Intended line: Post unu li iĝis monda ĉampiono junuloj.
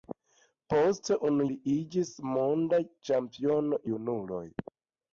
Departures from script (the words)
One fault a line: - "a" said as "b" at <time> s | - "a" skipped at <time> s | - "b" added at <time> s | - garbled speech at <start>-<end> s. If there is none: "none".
none